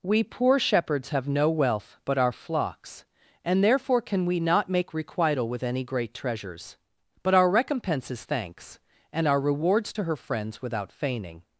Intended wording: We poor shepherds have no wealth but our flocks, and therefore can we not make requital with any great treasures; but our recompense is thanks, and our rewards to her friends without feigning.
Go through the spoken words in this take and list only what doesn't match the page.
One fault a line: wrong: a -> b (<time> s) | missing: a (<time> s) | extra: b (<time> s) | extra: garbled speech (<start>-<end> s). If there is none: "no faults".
no faults